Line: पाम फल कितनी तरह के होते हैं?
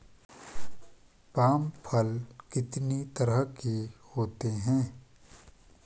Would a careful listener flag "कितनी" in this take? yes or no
no